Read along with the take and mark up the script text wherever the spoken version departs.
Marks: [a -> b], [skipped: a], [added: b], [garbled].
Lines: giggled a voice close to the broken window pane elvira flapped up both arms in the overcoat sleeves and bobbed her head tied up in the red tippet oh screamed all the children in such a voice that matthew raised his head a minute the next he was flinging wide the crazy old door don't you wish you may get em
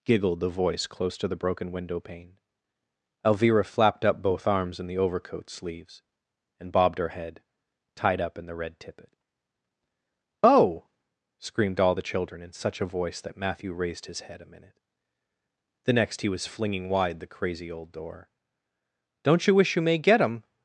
giggled [a -> the] voice close to the broken window pane elvira flapped up both arms in the overcoat sleeves and bobbed her head tied up in the red tippet oh screamed all the children in such a voice that matthew raised his head a minute the next he was flinging wide the crazy old door don't you wish you may get em